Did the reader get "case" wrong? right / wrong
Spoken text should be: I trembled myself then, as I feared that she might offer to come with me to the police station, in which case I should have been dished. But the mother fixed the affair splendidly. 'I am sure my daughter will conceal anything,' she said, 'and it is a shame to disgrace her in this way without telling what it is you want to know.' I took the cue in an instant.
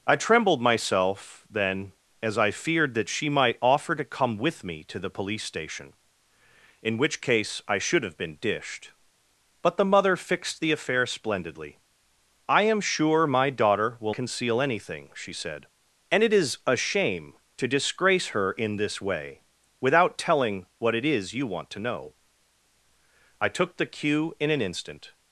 right